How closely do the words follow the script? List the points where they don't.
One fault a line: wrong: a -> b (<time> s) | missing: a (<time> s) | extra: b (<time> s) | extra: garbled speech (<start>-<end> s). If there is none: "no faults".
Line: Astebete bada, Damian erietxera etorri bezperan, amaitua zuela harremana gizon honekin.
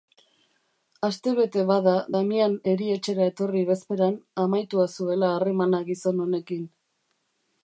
no faults